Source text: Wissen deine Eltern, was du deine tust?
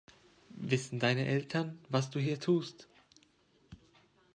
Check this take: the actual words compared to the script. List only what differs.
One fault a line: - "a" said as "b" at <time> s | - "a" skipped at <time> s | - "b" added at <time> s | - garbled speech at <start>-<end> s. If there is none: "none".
- "deine" said as "hier" at 2.2 s